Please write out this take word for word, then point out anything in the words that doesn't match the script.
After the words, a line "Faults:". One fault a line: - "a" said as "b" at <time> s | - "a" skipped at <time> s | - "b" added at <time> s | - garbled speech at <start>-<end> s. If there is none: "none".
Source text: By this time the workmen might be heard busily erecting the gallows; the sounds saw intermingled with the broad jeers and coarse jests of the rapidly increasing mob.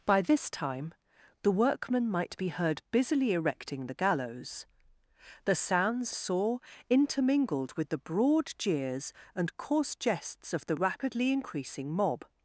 By this time the workmen might be heard busily erecting the gallows; the sounds saw intermingled with the broad jeers and coarse jests of the rapidly increasing mob.
Faults:
none